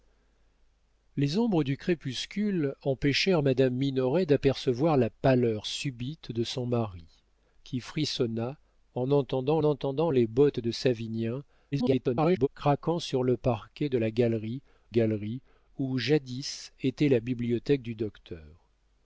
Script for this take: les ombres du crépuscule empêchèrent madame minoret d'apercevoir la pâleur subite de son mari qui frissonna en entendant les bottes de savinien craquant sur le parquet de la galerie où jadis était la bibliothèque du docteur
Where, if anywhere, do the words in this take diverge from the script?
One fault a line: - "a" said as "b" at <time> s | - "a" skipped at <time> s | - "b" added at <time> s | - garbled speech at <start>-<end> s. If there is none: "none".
- "entendant" added at 9.6 s
- garbled speech at 11.7-12.5 s
- "galerie" added at 14.9 s